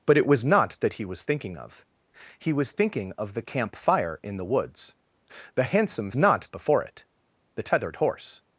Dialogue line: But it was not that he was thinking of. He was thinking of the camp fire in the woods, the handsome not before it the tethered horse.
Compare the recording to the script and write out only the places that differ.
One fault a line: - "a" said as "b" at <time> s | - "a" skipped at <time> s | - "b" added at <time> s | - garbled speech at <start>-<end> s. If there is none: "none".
none